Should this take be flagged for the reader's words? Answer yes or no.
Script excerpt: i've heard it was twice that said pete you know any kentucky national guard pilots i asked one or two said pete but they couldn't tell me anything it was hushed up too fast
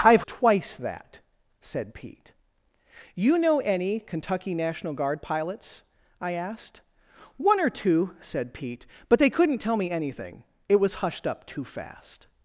yes